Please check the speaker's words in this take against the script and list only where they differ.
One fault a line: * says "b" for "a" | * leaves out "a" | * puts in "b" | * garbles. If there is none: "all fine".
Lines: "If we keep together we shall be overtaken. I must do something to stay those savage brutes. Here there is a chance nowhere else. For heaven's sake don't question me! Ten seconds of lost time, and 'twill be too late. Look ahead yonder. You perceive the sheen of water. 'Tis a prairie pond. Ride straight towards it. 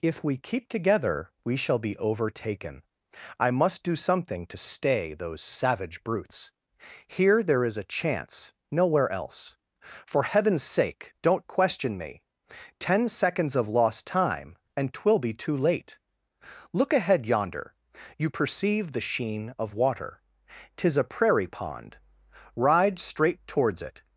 all fine